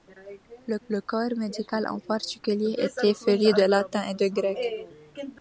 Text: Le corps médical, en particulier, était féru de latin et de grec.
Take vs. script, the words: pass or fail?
fail